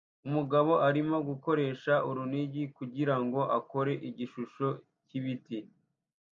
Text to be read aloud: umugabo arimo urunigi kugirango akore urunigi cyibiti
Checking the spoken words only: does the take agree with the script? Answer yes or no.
no